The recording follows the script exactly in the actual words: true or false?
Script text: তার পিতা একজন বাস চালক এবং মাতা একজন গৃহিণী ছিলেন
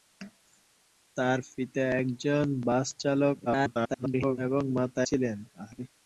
false